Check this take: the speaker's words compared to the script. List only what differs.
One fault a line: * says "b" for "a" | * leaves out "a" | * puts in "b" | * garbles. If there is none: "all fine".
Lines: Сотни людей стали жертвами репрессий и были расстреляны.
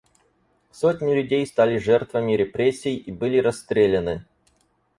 all fine